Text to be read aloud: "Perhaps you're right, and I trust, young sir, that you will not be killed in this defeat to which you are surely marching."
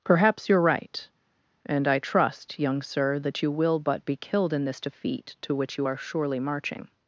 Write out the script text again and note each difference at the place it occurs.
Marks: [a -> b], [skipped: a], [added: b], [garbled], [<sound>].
"Perhaps you're right, and I trust, young sir, that you will [not -> but] be killed in this defeat to which you are surely marching."